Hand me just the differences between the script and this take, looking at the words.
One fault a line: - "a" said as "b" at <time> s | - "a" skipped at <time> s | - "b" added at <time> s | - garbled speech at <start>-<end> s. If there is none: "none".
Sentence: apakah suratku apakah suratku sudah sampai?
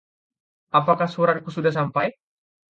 - "apakah suratku" skipped at 1.5 s